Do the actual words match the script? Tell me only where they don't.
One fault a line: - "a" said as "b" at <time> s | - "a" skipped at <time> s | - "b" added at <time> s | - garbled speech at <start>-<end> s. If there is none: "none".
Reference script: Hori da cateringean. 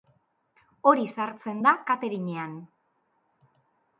- "sartzen" added at 1.1 s